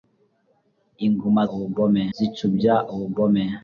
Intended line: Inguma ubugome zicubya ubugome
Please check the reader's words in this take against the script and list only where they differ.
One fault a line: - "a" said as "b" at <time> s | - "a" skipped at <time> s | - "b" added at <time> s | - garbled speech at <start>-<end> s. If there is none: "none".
none